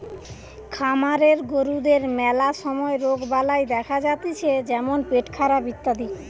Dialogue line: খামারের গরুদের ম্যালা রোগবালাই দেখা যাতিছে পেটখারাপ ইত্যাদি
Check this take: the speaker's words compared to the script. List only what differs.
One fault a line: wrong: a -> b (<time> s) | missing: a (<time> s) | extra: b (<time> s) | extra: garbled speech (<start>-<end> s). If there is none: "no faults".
extra: সময় (2.5 s)
extra: যেমন (4.7 s)